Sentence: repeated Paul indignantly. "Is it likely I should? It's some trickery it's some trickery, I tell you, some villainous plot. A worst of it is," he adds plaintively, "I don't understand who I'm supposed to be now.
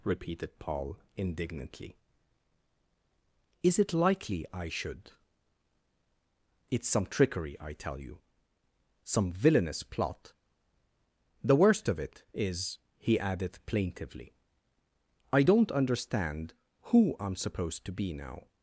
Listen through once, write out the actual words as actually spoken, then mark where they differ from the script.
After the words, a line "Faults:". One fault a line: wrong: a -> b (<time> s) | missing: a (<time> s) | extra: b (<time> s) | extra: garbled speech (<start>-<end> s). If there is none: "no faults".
repeated Paul indignantly. "Is it likely I should? It's some trickery, I tell you, some villainous plot. The worst of it is," he added plaintively, "I don't understand who I'm supposed to be now.
Faults:
missing: it's some trickery (7.6 s)
wrong: A -> The (11.4 s)
wrong: adds -> added (13.2 s)